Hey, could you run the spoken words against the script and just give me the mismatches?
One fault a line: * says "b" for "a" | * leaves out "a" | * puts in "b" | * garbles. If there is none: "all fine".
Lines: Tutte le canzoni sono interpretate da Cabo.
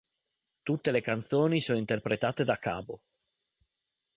all fine